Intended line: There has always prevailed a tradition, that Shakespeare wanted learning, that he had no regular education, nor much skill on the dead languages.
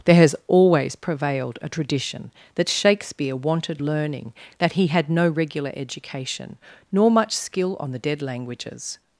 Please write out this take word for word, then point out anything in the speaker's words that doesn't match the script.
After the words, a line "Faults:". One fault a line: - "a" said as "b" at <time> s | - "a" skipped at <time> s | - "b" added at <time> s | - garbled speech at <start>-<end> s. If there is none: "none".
There has always prevailed a tradition, that Shakespeare wanted learning, that he had no regular education, nor much skill on the dead languages.
Faults:
none